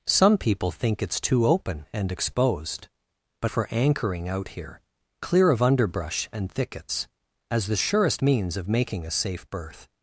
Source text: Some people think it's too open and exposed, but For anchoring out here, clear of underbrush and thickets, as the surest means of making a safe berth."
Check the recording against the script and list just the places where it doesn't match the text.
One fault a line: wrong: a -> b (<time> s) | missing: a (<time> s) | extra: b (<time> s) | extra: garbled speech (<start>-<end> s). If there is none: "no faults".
no faults